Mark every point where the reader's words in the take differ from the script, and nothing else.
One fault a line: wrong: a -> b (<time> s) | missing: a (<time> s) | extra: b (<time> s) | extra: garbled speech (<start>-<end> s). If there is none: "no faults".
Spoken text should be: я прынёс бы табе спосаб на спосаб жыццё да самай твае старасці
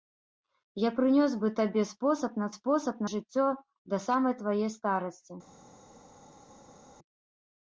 no faults